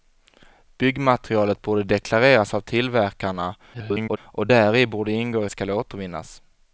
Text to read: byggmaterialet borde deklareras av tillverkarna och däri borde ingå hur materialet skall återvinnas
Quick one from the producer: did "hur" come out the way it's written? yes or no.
no